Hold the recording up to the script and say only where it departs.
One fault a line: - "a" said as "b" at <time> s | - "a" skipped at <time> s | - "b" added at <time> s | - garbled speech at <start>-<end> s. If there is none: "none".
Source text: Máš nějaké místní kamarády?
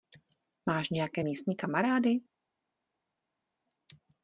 none